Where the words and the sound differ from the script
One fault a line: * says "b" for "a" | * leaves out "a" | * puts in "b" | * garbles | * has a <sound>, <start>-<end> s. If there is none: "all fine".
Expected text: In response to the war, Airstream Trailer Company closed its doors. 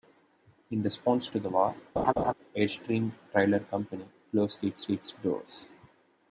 * has a laugh, 2.0-2.3 s
* puts in "its"